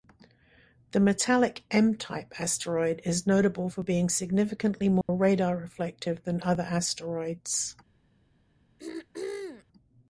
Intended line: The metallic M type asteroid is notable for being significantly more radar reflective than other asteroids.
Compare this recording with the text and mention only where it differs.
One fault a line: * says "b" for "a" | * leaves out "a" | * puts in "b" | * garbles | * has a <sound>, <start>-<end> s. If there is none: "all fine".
* has a dropout, 5.0-5.1 s
* has a throat clearing, 8.8-9.7 s